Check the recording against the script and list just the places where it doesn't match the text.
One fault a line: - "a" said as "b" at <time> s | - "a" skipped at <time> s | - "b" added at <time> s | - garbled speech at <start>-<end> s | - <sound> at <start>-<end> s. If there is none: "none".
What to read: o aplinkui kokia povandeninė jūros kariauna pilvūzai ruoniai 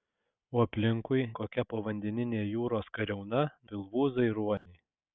- dropout at 4.6-4.7 s